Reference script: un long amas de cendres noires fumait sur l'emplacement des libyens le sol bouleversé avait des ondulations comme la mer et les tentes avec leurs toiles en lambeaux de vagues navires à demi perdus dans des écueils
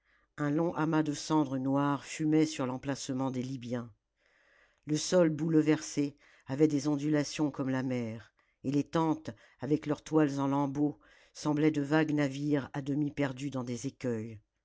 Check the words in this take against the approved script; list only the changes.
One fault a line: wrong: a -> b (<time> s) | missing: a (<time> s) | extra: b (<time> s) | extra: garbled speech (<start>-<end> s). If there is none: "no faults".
extra: semblaient (11.3 s)